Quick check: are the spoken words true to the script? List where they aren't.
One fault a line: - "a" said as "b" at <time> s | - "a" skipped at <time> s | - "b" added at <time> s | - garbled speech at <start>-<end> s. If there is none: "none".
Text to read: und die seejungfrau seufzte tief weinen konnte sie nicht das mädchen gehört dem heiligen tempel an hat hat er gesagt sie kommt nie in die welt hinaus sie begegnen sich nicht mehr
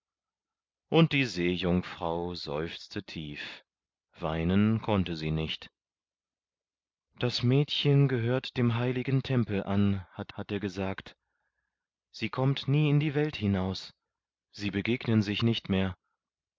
none